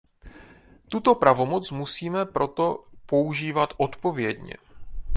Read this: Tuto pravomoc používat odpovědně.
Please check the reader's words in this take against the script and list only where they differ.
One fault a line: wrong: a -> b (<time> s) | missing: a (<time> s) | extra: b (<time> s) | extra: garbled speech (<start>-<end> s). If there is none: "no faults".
extra: musíme proto (1.7 s)